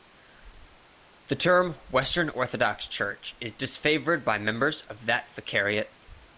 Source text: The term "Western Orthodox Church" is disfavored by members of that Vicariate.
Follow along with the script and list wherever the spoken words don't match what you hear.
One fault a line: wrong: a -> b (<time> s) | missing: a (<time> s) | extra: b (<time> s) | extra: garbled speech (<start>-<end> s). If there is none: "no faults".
no faults